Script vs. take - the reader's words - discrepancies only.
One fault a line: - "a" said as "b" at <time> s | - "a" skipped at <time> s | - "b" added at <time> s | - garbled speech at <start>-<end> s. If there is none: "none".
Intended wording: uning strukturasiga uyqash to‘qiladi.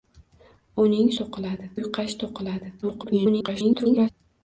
- "strukturasiga" said as "to‘qiladi" at 1.2 s
- garbled speech at 2.8-4.1 s